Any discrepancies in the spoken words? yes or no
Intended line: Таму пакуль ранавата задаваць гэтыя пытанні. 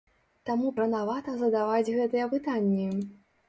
yes